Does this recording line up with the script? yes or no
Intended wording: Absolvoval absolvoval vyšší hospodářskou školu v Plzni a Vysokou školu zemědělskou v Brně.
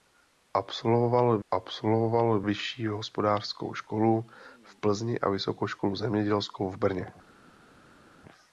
yes